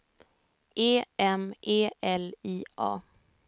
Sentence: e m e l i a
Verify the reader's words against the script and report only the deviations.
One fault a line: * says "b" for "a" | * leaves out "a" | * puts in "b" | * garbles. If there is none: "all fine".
all fine